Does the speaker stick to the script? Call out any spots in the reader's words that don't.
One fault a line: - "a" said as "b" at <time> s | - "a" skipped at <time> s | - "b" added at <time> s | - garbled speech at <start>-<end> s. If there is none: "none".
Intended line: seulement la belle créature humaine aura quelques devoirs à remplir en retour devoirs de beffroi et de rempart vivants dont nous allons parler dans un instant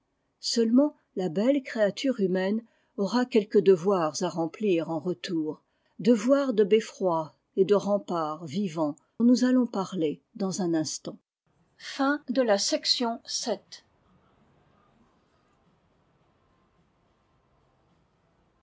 - "dont" skipped at 8.9 s